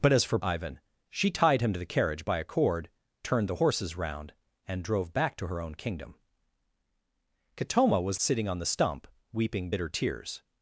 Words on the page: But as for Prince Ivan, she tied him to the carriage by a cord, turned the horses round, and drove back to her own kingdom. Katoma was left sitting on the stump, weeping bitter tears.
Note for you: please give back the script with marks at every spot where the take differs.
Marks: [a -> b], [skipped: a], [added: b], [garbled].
But as for [skipped: Prince] Ivan, she tied him to the carriage by a cord, turned the horses round, and drove back to her own kingdom. Katoma was [skipped: left] sitting on the stump, weeping bitter tears.